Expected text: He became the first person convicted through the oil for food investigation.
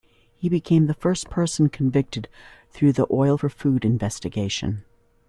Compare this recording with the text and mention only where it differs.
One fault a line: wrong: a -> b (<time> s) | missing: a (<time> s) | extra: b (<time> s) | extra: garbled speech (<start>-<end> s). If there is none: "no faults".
no faults